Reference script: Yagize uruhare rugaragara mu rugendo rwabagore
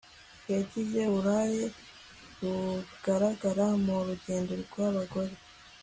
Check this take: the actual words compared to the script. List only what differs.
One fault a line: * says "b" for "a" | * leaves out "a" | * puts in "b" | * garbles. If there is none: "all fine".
all fine